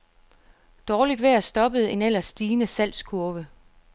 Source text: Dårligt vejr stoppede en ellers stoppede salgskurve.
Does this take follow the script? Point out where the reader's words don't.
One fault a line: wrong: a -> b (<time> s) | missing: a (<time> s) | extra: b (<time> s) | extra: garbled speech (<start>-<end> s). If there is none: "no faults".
wrong: stoppede -> stigende (2.2 s)